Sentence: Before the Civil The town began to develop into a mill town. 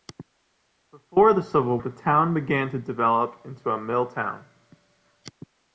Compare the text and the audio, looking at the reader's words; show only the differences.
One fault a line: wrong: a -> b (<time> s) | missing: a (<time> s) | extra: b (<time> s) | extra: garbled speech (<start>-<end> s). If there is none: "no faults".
no faults